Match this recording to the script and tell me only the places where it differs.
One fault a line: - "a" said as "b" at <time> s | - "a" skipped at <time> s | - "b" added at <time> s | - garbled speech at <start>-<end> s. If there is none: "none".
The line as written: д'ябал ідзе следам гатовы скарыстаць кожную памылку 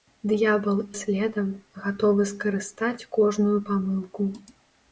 - "ідзе" skipped at 0.8 s